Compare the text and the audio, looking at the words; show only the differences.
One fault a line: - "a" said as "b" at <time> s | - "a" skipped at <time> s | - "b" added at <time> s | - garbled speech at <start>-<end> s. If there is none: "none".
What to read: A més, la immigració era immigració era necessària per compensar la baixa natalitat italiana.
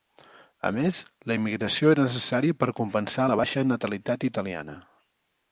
- "immigració era" skipped at 2.1 s